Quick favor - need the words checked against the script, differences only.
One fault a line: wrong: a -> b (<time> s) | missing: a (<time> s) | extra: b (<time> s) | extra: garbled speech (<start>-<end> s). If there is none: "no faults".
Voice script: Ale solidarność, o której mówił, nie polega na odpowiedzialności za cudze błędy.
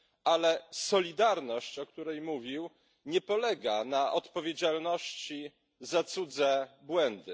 no faults